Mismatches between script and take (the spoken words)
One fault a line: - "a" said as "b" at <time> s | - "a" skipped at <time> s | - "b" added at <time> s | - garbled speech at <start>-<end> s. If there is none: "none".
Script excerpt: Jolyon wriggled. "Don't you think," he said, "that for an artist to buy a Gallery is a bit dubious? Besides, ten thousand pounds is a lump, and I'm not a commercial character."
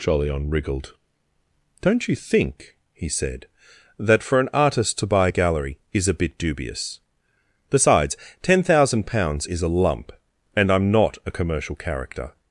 none